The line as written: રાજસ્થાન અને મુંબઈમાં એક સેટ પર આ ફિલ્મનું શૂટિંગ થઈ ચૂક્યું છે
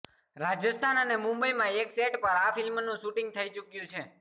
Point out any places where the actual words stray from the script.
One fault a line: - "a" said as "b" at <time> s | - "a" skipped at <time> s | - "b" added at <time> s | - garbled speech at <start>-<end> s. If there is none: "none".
none